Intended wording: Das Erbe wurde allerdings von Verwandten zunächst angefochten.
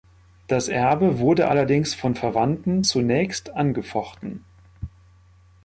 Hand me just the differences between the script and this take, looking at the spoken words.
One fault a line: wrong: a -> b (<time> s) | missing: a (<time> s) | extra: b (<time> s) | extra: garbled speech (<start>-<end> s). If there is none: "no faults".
no faults